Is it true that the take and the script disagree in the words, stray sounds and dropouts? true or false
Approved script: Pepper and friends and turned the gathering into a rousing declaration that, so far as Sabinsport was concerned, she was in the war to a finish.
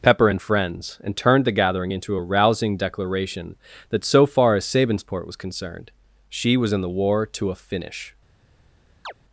true